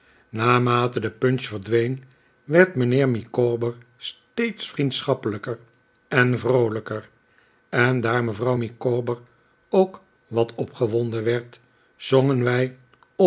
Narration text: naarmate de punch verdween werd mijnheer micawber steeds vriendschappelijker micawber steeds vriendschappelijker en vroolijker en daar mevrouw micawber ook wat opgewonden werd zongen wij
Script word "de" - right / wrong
right